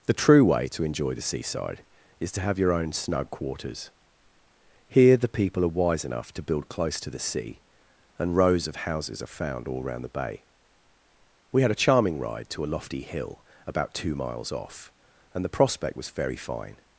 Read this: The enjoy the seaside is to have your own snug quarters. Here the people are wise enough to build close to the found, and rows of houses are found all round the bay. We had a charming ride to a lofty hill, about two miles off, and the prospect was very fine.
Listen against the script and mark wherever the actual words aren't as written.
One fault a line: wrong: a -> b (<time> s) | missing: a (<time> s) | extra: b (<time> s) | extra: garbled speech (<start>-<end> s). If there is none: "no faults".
extra: true way to (0.1 s)
wrong: found -> sea (7.2 s)